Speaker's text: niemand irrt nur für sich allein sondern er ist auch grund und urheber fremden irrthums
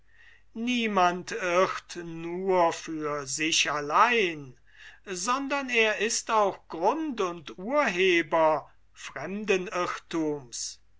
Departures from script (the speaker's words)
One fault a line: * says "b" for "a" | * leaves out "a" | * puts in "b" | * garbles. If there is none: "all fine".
all fine